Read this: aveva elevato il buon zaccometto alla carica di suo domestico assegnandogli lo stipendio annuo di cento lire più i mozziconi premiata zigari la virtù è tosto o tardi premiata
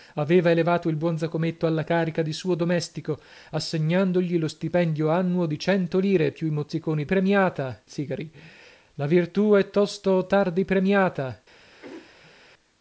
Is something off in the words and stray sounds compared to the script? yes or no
yes